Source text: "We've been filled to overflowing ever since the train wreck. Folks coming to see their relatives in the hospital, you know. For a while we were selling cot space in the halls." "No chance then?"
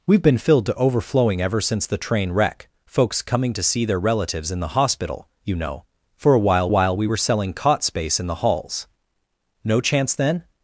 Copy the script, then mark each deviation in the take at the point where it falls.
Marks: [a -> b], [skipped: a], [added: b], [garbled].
"We've been filled to overflowing ever since the train wreck. Folks coming to see their relatives in the hospital, you know. For a while [added: while] we were selling cot space in the halls." "No chance then?"